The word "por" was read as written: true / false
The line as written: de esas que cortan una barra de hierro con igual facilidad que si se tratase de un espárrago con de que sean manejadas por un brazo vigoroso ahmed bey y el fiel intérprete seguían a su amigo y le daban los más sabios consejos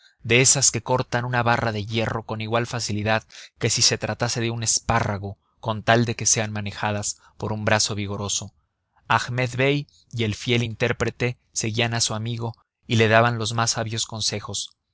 true